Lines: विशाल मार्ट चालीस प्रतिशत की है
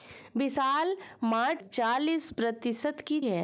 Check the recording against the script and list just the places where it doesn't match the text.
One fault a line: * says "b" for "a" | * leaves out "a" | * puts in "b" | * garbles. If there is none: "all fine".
all fine